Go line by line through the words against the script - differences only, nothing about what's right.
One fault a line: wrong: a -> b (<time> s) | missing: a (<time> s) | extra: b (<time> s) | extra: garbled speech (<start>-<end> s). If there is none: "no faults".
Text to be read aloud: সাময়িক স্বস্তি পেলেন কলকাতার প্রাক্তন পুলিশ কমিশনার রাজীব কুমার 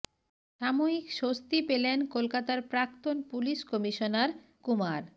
missing: রাজীব (4.3 s)